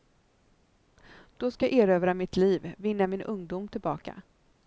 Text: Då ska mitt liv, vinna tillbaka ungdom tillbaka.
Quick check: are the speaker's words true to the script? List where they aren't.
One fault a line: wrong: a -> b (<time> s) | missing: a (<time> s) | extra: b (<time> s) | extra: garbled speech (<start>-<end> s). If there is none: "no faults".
extra: jag erövra (1.6 s)
wrong: tillbaka -> min (3.1 s)